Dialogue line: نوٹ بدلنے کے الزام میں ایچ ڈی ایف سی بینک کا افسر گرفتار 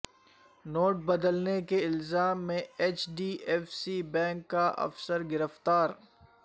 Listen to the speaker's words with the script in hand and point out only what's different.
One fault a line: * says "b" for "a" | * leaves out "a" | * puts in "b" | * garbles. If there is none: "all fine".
all fine